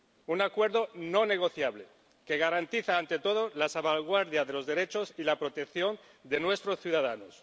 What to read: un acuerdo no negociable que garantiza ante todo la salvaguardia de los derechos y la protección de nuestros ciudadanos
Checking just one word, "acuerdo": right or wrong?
right